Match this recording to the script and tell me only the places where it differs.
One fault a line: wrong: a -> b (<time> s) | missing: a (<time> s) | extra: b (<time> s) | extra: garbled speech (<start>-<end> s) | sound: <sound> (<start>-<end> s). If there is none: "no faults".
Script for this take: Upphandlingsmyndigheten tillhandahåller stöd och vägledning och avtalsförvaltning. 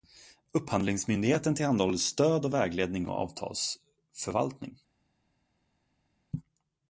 no faults